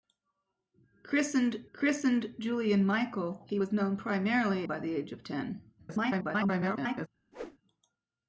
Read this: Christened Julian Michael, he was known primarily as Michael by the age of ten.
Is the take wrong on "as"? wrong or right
wrong